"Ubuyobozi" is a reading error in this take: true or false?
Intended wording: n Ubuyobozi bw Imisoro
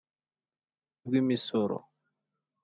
true